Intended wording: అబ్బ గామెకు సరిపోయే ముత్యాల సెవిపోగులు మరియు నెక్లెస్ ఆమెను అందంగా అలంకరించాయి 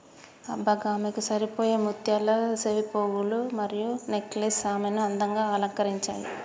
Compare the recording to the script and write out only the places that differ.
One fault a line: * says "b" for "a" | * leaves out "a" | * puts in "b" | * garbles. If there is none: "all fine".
all fine